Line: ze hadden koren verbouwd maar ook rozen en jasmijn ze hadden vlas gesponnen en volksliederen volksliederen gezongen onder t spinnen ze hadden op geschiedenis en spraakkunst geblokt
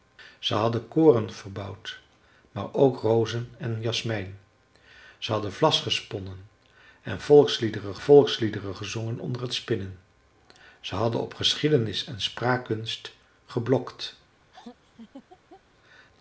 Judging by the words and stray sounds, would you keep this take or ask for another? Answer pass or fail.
fail